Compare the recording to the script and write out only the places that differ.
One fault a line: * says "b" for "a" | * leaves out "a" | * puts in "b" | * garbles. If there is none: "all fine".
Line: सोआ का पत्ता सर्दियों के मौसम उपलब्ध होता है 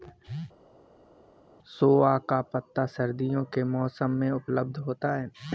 * puts in "में"